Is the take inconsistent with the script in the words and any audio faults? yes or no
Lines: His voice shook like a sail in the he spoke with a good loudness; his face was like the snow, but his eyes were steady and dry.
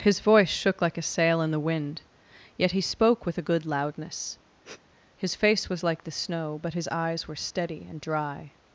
yes